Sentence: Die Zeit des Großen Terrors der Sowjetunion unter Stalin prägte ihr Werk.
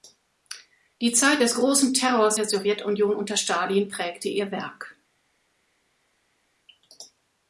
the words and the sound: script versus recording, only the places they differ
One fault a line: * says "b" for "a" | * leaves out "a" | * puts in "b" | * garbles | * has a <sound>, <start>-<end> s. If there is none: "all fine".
all fine